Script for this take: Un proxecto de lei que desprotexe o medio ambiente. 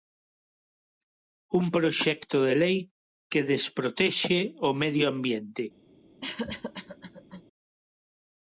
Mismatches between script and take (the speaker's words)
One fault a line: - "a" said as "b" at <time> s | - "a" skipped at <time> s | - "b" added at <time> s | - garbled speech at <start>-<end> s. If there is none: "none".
none